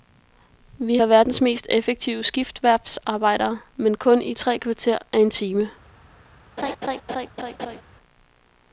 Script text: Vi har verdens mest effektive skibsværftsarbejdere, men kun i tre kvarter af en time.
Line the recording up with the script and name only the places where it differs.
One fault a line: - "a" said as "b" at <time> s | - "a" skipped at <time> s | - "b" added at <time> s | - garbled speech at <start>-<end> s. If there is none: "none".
none